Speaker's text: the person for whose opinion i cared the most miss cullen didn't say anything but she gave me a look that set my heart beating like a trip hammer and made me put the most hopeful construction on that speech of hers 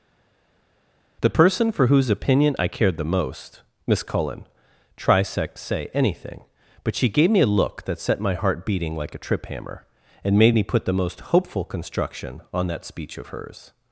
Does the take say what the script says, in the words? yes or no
no